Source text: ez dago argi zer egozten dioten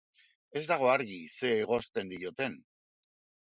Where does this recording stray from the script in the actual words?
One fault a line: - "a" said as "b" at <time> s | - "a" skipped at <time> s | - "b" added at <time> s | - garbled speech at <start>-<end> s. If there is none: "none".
none